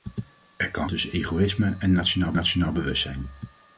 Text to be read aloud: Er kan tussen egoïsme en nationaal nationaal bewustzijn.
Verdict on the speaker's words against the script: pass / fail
pass